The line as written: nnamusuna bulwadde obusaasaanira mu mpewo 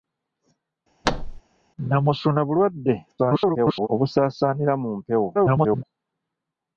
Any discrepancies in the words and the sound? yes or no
yes